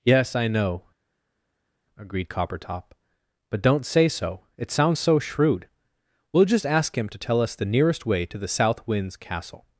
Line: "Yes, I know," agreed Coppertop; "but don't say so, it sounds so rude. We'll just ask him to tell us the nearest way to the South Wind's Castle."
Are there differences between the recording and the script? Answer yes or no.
yes